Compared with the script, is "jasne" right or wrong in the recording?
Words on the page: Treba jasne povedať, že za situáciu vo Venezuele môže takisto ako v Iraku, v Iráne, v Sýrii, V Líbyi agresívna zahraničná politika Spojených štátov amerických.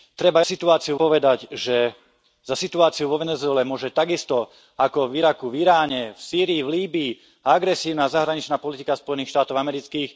wrong